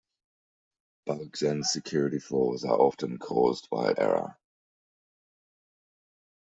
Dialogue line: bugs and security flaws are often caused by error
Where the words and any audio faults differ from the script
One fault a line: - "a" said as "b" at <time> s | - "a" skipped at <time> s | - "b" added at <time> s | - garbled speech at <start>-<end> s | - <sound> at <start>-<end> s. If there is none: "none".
none